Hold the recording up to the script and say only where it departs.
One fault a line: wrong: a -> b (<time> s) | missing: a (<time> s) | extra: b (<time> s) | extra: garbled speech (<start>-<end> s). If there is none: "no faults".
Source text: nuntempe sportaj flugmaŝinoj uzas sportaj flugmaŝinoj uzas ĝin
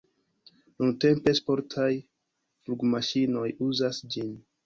missing: sportaj flugmaŝinoj uzas (4.0 s)